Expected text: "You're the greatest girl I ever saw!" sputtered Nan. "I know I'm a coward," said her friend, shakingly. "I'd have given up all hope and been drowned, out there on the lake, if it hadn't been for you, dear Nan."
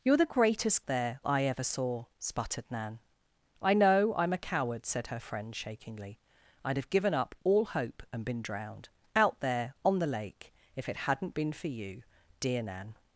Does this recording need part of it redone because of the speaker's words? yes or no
yes